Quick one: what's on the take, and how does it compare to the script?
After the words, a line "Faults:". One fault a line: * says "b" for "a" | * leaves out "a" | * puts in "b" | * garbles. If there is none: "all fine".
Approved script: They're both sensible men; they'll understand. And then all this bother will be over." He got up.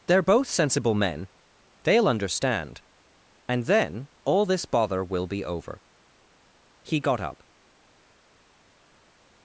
They're both sensible men; they'll understand. And then all this bother will be over." He got up.
Faults:
all fine